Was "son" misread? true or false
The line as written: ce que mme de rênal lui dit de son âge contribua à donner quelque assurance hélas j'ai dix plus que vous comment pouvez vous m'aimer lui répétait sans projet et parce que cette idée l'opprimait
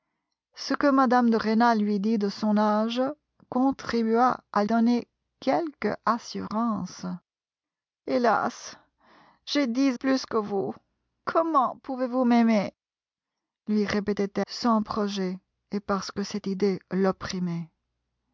false